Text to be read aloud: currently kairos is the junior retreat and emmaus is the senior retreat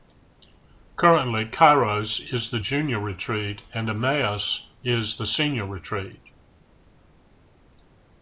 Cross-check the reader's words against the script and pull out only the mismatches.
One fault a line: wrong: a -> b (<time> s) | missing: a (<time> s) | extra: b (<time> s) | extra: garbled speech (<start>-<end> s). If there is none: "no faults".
no faults